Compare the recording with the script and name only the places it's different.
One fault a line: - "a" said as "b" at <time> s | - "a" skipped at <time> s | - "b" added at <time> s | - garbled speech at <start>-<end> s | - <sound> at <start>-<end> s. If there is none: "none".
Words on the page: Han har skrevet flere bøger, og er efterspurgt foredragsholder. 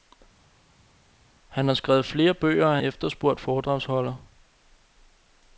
none